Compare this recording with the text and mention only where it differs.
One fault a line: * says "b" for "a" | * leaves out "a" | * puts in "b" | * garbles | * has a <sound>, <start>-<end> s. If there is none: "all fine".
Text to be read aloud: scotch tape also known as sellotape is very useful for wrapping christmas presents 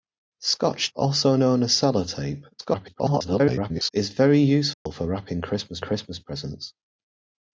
* leaves out "tape"
* garbles
* has a dropout, 4.7-4.9 s
* puts in "christmas"